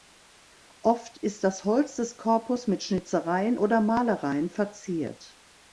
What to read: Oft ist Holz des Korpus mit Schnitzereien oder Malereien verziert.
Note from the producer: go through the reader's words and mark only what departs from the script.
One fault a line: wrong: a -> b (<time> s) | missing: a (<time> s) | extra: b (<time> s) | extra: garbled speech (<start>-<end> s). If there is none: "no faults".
extra: das (1.4 s)